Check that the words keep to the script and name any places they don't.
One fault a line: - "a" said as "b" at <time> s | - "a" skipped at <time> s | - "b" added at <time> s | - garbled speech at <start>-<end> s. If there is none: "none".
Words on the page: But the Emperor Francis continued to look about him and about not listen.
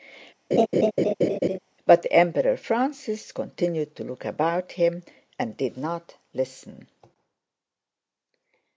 - "about" said as "did" at 5.6 s